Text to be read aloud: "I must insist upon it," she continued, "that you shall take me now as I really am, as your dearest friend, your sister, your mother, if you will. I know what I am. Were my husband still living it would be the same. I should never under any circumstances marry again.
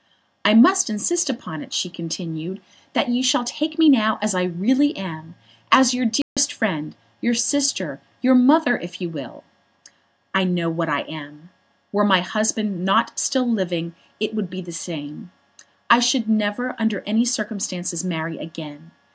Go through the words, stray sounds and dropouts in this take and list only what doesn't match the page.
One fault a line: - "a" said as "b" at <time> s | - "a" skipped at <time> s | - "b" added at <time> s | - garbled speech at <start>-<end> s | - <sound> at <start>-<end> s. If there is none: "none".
- dropout at 6.2-6.4 s
- "not" added at 12.9 s